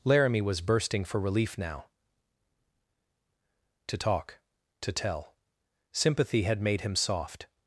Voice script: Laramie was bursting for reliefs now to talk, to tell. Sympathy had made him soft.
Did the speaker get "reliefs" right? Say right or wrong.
wrong